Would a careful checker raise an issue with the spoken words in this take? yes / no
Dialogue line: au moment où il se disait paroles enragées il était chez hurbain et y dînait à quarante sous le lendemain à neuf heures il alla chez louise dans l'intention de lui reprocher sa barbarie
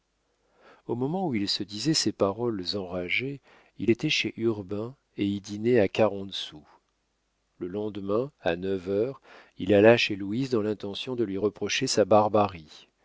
yes